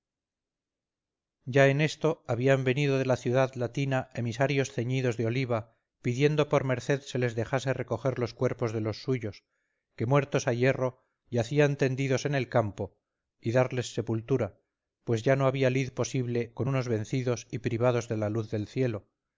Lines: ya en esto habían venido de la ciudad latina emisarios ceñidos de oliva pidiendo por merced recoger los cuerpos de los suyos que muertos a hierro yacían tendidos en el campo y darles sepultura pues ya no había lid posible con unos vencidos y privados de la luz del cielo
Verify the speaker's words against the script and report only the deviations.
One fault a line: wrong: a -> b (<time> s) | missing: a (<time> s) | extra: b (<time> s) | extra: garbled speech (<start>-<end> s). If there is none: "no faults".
extra: se les dejase (7.0 s)